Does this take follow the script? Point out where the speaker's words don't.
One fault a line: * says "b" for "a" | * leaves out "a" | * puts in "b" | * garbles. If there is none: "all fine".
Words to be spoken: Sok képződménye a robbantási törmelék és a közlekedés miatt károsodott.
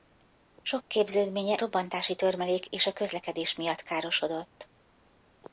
* leaves out "a"